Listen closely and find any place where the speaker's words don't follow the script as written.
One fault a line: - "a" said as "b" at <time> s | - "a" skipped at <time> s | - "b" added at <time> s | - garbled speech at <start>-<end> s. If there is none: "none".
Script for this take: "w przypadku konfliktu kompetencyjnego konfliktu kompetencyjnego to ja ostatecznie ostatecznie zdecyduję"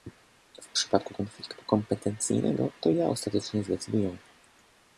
- "konfliktu kompetencyjnego" skipped at 2.7 s
- "ostatecznie" skipped at 3.6 s